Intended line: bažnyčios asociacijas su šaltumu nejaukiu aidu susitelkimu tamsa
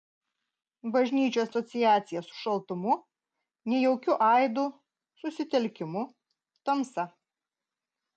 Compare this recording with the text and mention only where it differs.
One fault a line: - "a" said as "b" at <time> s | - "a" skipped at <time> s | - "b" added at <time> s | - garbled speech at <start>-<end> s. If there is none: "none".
none